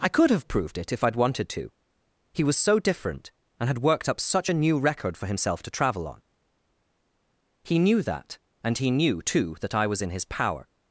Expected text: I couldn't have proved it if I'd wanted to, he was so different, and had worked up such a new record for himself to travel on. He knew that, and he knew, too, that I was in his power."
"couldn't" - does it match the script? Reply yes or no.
no